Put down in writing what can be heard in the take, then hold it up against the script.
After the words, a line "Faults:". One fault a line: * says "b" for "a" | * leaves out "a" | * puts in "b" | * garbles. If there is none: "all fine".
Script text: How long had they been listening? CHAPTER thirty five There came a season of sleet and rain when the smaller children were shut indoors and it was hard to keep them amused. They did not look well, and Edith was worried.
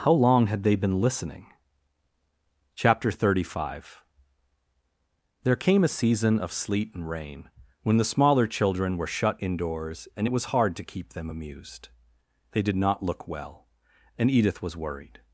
How long had they been listening? CHAPTER thirty five There came a season of sleet and rain when the smaller children were shut indoors and it was hard to keep them amused. They did not look well, and Edith was worried.
Faults:
all fine